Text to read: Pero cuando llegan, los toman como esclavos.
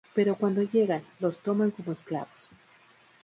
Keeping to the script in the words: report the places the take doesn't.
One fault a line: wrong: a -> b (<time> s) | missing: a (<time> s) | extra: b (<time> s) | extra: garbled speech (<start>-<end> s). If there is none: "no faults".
no faults